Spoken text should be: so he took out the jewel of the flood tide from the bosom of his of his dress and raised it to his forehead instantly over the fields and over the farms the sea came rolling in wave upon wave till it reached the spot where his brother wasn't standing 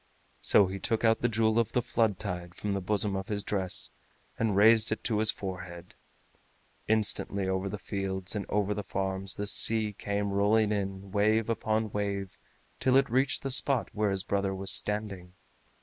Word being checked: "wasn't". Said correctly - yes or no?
no